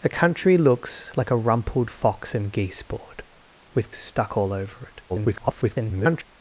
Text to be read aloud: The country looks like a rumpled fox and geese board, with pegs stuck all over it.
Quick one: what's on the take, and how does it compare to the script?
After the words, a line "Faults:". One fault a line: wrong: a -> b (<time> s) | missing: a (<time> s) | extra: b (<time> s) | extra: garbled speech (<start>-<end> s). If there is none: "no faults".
The country looks like a rumpled fox and geese board, with stuck all over it. [garbled]
Faults:
missing: pegs (3.9 s)
extra: garbled speech (5.1-6.3 s)